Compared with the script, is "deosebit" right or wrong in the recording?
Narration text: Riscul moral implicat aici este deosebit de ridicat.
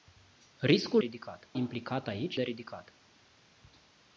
wrong